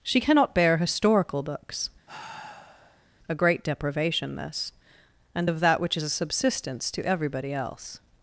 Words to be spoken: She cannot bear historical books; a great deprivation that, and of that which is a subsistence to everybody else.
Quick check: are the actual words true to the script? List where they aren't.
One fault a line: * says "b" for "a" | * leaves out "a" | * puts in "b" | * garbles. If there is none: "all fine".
* says "this" for "that"